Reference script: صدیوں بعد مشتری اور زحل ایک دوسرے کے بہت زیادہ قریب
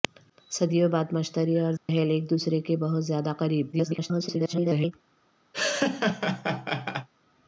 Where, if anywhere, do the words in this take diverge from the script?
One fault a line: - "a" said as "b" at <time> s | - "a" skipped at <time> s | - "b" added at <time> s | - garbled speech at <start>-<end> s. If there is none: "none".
- garbled speech at 3.7-4.9 s